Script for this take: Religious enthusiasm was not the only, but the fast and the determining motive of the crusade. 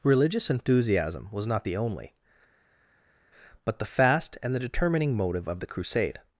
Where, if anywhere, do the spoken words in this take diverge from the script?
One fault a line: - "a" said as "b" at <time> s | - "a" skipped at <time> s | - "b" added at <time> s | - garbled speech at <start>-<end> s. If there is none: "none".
none